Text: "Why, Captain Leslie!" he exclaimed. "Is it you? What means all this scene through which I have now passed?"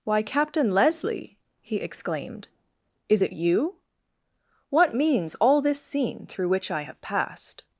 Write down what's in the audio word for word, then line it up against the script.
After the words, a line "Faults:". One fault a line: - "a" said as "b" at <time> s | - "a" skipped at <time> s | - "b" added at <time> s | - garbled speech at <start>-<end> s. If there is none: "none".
"Why, Captain Leslie!" he exclaimed. "Is it you? What means all this scene through which I have passed?"
Faults:
- "now" skipped at 7.0 s